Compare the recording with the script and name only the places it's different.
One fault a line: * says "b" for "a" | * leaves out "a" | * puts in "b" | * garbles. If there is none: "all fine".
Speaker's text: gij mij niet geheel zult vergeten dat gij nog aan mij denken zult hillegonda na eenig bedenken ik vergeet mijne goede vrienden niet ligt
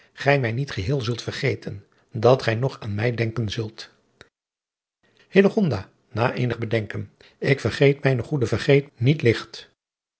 * says "vergeet" for "vrienden"